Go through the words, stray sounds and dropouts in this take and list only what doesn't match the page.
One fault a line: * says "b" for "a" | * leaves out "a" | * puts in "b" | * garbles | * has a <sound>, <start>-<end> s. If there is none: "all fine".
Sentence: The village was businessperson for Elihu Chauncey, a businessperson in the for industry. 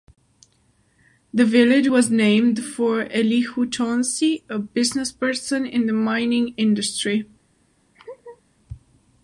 * says "named" for "businessperson"
* says "mining" for "for"
* has a laugh, 7.9-8.4 s